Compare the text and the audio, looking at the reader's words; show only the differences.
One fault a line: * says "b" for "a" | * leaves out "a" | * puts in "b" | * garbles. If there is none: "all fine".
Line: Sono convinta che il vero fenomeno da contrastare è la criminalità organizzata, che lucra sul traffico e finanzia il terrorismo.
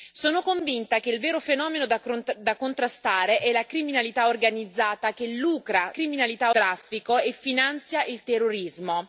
* says "criminalità" for "sul"